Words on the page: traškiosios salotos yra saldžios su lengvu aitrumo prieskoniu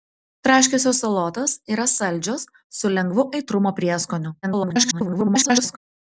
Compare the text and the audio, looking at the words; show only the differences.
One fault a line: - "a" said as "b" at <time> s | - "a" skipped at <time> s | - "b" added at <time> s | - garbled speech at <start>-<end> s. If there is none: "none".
- garbled speech at 4.4-5.8 s